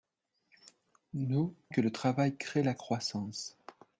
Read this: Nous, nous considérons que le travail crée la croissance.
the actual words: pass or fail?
fail